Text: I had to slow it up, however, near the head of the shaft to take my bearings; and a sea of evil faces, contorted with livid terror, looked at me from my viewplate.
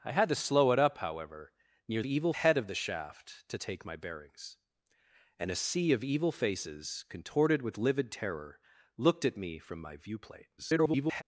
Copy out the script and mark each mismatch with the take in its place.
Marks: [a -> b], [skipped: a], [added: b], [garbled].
I had to slow it up, however, near [the -> evil] head of the shaft to take my bearings; and a sea of evil faces, contorted with livid terror, looked at me from my viewplate. [garbled]